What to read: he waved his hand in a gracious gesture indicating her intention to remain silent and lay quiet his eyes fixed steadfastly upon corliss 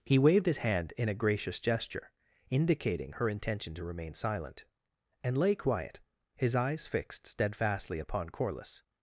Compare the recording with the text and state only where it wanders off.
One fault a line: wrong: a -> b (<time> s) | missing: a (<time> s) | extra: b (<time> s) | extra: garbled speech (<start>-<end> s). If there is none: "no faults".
no faults